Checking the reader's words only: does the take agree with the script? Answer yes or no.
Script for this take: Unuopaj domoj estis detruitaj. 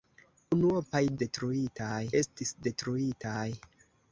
no